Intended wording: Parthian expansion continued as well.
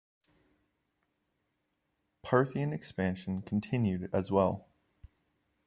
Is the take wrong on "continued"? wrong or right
right